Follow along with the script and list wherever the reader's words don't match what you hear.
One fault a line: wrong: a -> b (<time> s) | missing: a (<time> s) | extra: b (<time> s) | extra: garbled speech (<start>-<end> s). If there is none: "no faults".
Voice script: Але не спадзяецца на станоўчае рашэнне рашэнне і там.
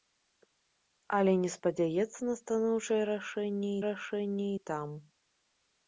no faults